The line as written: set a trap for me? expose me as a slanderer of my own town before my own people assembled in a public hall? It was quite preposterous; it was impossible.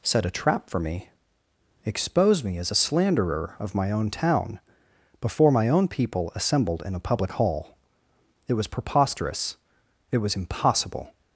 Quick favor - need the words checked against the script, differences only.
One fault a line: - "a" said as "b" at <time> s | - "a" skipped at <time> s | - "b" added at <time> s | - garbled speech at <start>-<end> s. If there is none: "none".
- "quite" skipped at 8.7 s